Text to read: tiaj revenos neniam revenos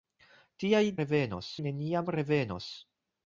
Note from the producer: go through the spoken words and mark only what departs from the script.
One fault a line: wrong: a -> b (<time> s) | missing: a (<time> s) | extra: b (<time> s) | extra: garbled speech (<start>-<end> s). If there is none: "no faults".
no faults